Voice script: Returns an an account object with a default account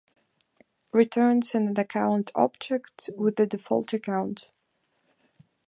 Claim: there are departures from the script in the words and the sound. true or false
true